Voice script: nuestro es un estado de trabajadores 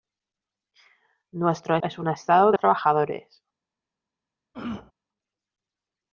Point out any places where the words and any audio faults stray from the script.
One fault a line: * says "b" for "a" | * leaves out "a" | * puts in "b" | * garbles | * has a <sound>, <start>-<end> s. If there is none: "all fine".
* has a throat clearing, 4.5-4.9 s